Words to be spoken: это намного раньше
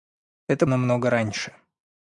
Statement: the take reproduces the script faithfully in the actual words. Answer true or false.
true